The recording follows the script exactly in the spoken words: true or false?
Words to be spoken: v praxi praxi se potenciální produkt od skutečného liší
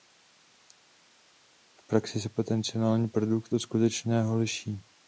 false